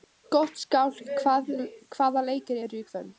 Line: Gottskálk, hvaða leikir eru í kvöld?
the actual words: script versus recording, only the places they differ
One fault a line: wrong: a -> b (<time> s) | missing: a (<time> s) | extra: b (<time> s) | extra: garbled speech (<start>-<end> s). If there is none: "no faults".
no faults